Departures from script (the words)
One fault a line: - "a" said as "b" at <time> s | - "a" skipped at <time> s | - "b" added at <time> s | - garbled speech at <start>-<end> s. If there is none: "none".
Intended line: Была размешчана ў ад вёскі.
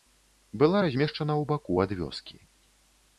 - "баку" added at 1.5 s